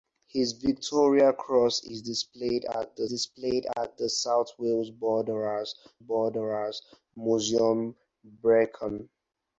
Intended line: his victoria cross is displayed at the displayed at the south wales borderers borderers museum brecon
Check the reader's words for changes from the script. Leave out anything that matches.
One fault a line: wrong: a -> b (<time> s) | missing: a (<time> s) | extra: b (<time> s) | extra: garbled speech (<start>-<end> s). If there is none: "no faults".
no faults